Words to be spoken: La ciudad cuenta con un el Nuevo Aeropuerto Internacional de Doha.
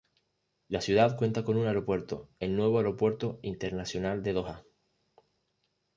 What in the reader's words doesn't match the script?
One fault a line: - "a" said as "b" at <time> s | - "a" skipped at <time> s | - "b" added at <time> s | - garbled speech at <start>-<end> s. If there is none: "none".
- "aeropuerto" added at 1.7 s